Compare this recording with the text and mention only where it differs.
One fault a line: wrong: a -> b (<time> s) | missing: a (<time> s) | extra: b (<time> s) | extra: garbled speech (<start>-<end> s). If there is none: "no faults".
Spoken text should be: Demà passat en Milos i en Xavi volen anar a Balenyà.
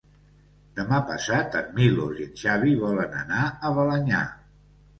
no faults